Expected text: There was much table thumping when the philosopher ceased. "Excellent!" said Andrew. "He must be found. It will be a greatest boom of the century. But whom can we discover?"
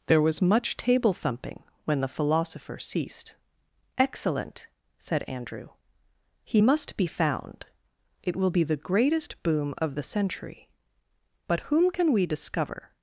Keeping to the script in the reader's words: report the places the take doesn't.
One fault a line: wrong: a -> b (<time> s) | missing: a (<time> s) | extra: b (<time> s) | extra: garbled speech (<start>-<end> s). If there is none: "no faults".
wrong: a -> the (8.6 s)